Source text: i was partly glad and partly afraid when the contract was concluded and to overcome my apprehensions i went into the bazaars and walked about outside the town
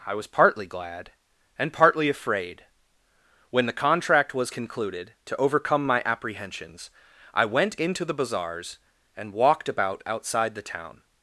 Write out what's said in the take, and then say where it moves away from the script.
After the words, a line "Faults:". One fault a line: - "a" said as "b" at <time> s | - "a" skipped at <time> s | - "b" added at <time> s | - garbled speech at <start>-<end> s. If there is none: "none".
i was partly glad and partly afraid when the contract was concluded to overcome my apprehensions i went into the bazaars and walked about outside the town
Faults:
- "and" skipped at 5.1 s